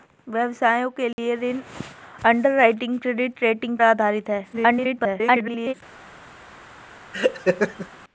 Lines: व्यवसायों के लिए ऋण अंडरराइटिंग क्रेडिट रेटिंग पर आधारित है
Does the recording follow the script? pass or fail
fail